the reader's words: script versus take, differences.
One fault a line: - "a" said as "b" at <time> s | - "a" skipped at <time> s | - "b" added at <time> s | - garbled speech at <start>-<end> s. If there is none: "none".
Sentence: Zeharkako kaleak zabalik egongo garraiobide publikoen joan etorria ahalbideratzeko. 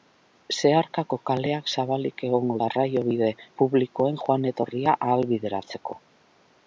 none